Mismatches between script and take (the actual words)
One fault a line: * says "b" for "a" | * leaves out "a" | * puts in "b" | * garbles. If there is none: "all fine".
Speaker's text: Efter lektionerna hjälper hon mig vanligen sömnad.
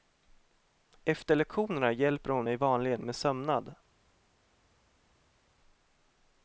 * puts in "med"